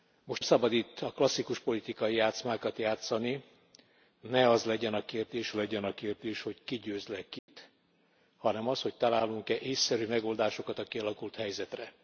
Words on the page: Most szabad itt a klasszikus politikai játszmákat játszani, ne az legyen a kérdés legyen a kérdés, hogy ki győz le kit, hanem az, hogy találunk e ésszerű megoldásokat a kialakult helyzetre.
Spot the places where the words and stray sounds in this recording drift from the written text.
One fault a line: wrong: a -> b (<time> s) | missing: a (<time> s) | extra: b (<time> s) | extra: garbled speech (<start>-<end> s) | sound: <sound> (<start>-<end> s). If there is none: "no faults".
sound: dropout (7.4-7.5 s)